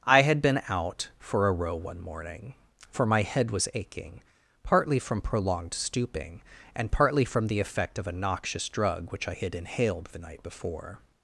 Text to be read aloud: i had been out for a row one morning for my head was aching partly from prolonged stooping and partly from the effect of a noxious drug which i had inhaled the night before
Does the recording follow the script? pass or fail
pass